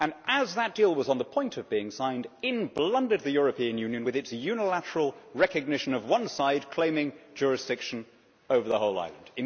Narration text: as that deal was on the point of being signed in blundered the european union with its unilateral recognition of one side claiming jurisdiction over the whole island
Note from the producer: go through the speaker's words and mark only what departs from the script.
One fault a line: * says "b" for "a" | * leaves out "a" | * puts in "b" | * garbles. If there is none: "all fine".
all fine